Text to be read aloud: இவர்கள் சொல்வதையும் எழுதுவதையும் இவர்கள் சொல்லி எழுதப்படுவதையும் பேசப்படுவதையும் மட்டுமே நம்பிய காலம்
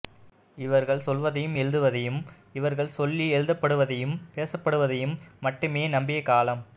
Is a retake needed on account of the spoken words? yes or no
no